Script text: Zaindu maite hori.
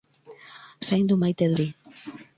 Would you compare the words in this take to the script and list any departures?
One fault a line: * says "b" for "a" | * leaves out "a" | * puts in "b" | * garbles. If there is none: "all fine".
all fine